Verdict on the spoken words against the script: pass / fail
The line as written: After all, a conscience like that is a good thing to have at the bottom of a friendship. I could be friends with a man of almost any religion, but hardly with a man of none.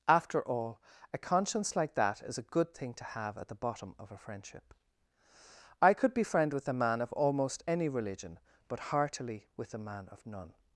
fail